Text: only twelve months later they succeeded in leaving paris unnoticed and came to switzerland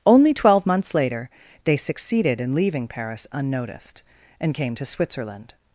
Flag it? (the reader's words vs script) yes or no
no